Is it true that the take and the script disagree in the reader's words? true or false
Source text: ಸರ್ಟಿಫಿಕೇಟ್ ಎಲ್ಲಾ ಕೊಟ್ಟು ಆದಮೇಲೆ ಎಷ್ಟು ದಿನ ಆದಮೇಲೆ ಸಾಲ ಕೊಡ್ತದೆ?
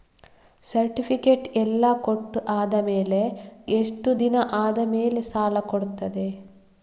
false